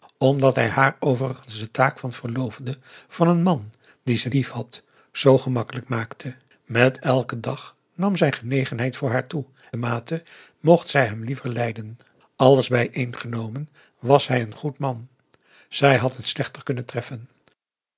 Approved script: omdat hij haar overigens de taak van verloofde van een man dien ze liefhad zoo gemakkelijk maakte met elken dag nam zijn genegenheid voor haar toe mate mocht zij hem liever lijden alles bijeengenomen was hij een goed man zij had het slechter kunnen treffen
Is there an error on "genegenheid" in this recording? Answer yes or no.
no